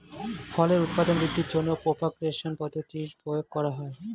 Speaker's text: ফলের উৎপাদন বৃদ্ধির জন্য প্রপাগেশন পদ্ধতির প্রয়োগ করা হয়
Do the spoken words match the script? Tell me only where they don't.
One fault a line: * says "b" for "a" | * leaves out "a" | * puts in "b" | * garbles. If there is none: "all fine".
all fine